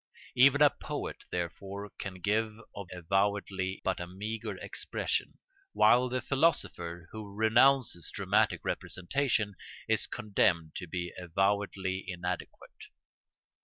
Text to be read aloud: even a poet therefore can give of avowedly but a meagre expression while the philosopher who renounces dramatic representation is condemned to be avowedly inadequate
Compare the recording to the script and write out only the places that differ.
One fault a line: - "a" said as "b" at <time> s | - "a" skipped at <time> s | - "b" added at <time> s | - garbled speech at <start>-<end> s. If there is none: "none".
none